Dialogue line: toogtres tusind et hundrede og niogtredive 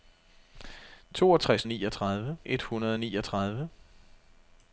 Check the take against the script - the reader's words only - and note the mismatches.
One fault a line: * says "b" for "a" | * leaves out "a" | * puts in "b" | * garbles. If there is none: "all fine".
* says "niogtredive" for "tusind"